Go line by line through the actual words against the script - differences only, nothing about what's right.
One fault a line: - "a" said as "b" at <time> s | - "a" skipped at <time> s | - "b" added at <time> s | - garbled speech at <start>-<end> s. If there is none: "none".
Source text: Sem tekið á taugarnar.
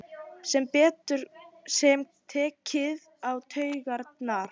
none